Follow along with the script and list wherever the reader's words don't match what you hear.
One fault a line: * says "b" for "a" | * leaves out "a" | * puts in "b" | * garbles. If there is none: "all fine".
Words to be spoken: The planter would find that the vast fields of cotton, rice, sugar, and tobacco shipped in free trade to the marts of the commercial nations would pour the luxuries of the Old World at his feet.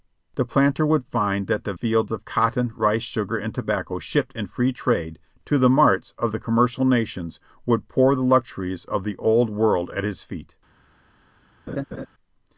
* leaves out "vast"